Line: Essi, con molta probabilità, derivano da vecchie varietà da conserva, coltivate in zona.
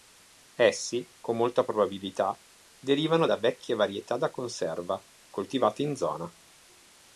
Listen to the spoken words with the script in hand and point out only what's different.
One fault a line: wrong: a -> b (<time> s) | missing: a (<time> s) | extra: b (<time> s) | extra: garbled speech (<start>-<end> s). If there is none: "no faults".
no faults